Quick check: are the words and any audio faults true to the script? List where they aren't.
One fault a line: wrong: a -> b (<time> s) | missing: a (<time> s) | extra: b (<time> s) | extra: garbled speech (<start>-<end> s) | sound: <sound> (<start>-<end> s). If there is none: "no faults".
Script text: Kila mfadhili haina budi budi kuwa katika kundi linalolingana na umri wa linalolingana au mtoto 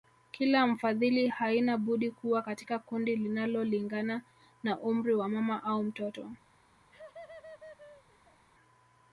missing: budi (2.1 s)
wrong: linalolingana -> mama (5.3 s)
sound: laugh (6.9-8.4 s)